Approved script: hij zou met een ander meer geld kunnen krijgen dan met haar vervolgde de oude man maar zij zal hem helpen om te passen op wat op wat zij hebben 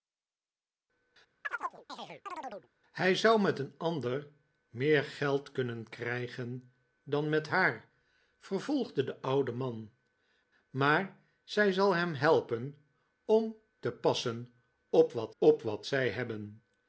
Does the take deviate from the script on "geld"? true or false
false